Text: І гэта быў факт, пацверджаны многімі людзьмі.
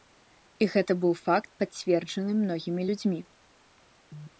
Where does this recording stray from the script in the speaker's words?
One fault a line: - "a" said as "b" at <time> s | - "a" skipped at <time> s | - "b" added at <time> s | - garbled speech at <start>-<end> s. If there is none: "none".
none